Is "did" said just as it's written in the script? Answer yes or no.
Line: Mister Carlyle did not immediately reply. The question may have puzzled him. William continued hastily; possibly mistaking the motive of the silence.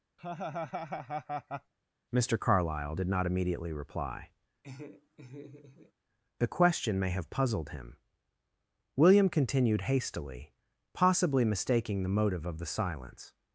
yes